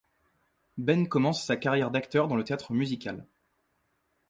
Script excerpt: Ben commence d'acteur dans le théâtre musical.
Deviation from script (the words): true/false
true